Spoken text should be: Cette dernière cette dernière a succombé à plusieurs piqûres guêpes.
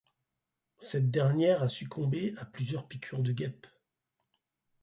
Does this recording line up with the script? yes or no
no